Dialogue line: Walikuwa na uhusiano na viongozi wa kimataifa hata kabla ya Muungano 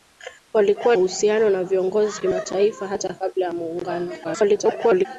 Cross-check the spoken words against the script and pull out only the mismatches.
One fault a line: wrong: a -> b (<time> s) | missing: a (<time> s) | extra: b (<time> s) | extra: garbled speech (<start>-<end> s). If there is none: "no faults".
missing: na (0.9 s)
missing: wa (2.2 s)
extra: garbled speech (4.2-5.1 s)